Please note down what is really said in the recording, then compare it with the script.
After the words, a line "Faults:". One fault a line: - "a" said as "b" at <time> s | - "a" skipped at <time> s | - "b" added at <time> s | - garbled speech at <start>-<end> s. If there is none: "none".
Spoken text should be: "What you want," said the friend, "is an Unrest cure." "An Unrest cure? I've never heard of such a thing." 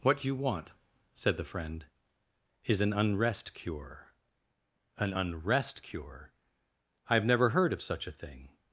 "What you want," said the friend, "is an Unrest cure." "An Unrest cure? I've never heard of such a thing."
Faults:
none